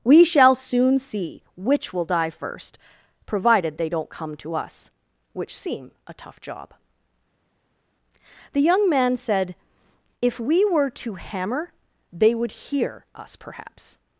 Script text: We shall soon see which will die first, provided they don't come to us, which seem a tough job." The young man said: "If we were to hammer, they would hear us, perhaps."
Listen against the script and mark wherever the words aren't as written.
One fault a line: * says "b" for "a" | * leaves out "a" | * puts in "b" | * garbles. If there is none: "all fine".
all fine